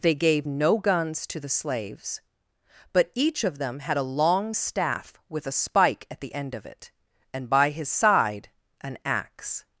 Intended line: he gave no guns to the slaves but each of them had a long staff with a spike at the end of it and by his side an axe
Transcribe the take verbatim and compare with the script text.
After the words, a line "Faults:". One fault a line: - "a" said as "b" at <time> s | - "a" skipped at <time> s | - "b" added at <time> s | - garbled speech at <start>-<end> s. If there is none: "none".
they gave no guns to the slaves but each of them had a long staff with a spike at the end of it and by his side an axe
Faults:
- "he" said as "they" at 0.0 s